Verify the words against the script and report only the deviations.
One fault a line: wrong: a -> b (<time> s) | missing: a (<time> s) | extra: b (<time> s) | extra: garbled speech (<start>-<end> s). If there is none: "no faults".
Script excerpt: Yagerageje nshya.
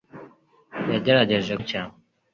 no faults